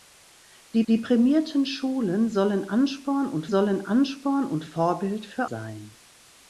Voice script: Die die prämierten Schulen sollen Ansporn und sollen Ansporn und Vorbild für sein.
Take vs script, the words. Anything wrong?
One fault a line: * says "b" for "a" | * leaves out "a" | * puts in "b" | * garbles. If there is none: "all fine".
all fine